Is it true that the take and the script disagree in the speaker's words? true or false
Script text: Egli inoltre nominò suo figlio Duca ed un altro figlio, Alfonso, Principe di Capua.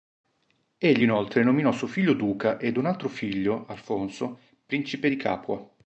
false